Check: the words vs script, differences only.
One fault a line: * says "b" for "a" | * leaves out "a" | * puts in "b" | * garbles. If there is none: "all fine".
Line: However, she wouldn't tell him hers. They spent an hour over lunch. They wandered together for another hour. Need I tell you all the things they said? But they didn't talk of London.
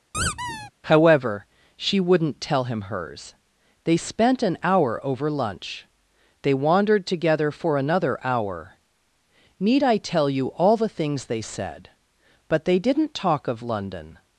all fine